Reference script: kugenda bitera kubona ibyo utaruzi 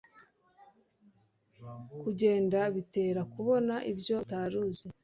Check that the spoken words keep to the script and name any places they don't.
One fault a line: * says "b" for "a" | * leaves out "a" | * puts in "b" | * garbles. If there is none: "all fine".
all fine